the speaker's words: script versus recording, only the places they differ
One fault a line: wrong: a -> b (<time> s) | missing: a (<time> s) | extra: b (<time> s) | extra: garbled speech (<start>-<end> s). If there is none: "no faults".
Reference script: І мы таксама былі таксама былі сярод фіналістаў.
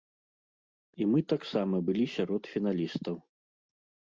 missing: таксама былі (2.0 s)